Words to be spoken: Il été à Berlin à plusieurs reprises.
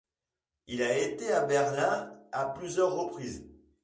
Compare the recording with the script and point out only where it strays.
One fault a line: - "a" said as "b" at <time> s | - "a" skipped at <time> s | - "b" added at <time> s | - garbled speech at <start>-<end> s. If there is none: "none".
- "a" added at 0.8 s